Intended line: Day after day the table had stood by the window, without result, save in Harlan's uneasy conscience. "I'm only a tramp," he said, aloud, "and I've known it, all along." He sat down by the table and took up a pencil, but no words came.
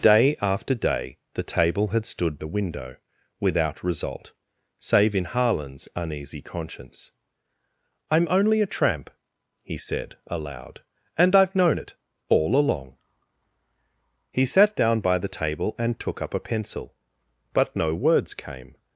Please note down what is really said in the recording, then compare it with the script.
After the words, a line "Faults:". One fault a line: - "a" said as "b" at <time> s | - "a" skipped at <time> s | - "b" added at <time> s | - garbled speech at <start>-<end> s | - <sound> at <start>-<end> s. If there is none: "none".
Day after day the table had stood the window, without result, save in Harlan's uneasy conscience. "I'm only a tramp," he said, aloud, "and I've known it, all along." He sat down by the table and took up a pencil, but no words came.
Faults:
- "by" skipped at 2.4 s